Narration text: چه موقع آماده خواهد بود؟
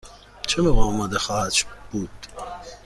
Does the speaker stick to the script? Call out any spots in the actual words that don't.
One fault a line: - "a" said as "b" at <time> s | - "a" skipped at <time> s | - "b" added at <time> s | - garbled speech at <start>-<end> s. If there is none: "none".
none